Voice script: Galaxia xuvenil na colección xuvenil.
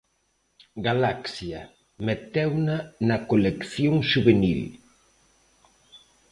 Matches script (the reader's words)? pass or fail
fail